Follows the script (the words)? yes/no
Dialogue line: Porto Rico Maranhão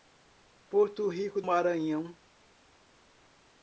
yes